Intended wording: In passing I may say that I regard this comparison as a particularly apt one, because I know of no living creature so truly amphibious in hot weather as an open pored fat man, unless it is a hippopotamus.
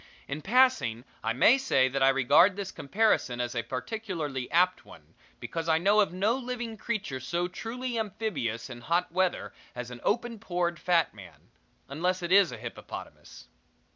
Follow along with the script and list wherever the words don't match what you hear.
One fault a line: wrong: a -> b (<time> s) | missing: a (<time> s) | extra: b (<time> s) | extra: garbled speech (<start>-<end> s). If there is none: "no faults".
no faults